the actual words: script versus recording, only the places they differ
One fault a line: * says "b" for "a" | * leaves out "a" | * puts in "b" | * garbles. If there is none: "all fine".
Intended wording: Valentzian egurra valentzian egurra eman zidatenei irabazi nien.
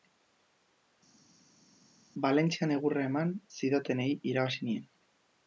* leaves out "valentzian egurra"